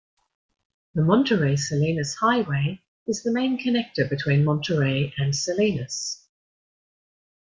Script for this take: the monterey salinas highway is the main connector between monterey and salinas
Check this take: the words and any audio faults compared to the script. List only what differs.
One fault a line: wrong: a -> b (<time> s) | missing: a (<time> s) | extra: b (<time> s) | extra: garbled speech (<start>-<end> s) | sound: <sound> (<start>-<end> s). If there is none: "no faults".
no faults